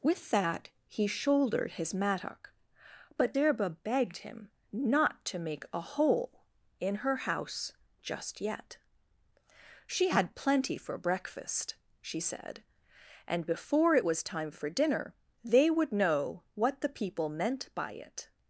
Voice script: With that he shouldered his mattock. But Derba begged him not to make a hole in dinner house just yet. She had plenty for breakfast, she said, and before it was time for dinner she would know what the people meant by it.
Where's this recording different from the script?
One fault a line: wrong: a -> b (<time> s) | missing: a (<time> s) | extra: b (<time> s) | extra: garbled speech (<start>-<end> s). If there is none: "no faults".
wrong: dinner -> her (7.0 s)
wrong: she -> they (15.4 s)